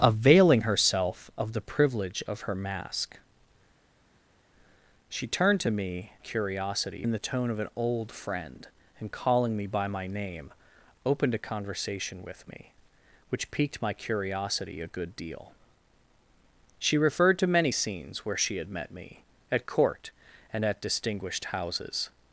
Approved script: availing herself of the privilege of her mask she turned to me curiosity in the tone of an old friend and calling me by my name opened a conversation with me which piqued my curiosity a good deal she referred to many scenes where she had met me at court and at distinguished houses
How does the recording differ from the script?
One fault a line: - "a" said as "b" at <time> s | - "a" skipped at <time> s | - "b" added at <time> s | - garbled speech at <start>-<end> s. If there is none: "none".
none